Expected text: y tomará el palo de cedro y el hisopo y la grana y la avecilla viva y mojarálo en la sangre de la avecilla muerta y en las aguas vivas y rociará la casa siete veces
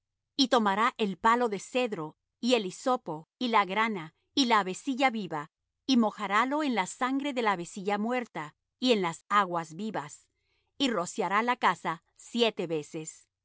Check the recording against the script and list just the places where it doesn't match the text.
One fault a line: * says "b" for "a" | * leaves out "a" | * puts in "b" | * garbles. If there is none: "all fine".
all fine